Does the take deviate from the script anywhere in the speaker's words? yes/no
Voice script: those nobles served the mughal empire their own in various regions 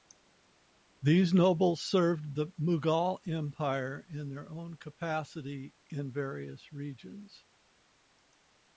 yes